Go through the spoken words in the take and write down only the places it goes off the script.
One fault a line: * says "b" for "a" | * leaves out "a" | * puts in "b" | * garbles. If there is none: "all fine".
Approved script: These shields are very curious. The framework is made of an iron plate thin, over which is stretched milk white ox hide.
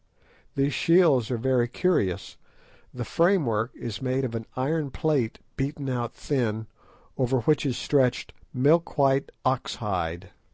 * puts in "beaten out"